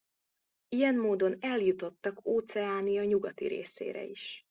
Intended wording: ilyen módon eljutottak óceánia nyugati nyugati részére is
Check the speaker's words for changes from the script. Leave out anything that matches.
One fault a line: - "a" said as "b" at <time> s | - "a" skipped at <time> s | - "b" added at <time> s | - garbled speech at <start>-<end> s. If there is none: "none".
- "nyugati" skipped at 3.5 s